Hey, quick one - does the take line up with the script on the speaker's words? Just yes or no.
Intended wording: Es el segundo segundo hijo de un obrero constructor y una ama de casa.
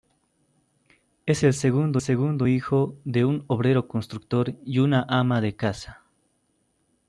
yes